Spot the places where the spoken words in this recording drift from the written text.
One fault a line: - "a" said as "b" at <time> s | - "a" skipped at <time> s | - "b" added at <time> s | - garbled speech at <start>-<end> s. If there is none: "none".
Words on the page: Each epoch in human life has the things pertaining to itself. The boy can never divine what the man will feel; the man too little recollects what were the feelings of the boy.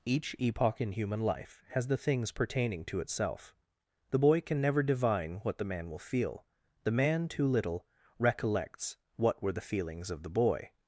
none